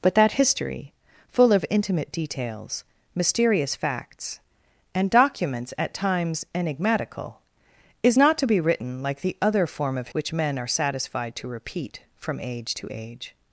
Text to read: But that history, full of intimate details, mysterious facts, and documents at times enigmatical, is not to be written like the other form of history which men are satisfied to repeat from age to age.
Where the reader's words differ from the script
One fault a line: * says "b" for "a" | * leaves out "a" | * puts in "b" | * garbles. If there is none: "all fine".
* leaves out "history"